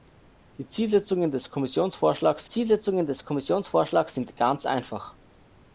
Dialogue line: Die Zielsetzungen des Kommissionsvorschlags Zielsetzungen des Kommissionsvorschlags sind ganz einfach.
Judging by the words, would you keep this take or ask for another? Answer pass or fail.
pass